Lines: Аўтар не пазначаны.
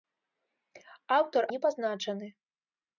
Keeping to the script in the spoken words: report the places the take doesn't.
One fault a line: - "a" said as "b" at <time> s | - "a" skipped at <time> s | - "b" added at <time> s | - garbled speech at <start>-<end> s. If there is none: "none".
none